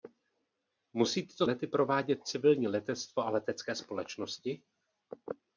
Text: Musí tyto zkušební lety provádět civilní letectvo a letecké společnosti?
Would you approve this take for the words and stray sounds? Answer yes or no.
no